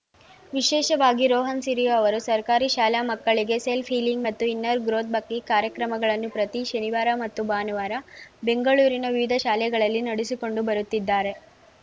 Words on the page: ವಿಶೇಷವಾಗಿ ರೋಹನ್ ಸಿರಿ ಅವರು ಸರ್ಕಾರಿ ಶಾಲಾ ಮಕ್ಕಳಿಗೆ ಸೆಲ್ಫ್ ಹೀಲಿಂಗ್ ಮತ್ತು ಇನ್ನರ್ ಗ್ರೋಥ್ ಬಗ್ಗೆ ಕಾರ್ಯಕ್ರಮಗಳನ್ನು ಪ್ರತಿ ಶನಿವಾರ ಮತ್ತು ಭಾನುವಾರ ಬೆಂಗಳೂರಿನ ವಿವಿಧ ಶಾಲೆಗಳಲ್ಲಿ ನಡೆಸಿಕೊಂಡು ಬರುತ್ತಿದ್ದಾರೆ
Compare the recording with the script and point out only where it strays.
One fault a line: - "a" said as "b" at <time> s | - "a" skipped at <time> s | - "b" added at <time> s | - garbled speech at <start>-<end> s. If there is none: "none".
none